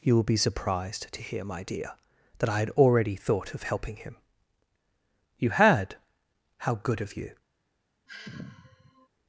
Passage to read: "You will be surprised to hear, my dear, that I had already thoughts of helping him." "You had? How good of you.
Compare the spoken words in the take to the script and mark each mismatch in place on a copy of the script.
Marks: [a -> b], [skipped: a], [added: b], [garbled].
"You will be surprised to hear, my dear, that I had already [thoughts -> thought] of helping him." "You had? How good of you.